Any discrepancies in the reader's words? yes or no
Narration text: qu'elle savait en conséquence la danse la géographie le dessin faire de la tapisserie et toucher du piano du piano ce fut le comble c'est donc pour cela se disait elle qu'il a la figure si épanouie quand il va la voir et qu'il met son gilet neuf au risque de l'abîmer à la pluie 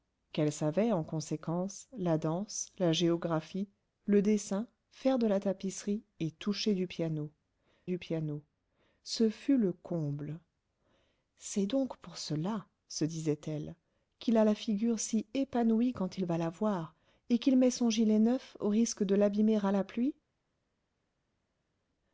no